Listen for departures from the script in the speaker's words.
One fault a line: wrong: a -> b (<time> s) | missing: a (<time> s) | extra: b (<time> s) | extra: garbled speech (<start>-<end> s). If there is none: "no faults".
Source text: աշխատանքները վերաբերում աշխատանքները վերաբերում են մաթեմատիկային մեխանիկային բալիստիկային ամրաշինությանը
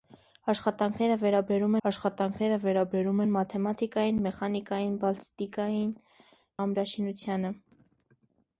no faults